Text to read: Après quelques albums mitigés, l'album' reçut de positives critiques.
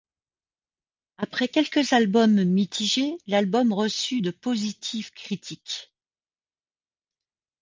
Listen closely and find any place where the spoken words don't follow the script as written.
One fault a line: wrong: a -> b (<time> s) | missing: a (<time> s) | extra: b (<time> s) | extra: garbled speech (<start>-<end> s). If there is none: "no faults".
no faults